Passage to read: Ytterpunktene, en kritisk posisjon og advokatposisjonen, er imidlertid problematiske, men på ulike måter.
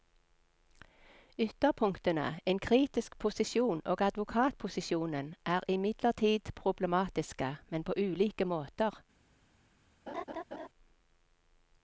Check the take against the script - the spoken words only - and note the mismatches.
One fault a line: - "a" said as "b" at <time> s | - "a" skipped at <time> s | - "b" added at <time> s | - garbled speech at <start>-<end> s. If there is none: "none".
none